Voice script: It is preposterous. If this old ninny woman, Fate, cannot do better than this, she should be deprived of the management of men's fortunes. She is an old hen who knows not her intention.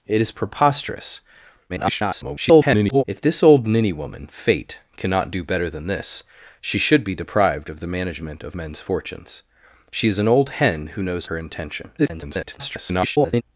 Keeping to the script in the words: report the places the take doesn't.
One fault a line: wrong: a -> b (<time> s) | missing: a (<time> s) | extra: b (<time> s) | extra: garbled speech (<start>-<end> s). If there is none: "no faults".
extra: garbled speech (1.7-3.0 s)
missing: not (11.3 s)
extra: garbled speech (12.0-13.4 s)